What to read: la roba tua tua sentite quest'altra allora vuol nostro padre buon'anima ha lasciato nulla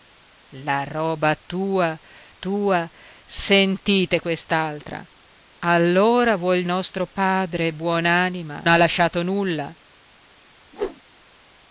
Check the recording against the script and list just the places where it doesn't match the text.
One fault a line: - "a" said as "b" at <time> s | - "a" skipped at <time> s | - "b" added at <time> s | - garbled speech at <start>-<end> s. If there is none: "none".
none